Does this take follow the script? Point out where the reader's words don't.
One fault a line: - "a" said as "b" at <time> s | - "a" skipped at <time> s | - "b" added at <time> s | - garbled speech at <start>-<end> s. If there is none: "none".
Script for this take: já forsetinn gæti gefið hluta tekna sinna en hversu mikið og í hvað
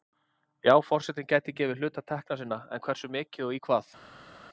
none